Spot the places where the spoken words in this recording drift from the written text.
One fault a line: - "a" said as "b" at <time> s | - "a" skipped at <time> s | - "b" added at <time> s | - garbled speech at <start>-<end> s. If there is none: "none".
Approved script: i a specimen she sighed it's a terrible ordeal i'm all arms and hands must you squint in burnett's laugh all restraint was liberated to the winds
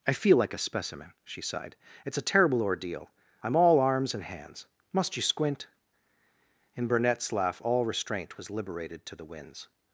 - "feel like" added at 0.1 s